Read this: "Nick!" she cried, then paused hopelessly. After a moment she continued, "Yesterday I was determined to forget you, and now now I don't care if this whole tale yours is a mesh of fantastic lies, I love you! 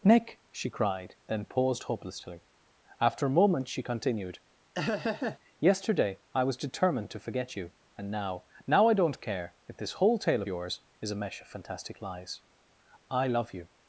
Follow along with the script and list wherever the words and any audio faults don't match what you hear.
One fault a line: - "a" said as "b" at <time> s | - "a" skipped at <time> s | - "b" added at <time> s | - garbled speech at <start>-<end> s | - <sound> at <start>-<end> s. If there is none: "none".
- laugh at 4.7-5.4 s